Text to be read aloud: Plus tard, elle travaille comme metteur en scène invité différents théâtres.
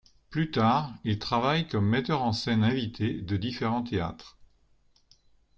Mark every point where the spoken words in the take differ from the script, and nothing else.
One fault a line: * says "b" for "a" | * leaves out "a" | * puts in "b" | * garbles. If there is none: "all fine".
* says "il" for "elle"
* puts in "de"